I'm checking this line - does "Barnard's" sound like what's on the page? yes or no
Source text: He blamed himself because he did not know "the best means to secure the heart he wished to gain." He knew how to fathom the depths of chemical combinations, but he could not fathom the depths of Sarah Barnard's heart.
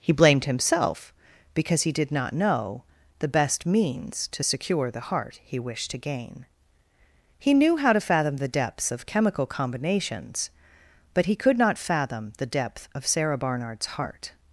yes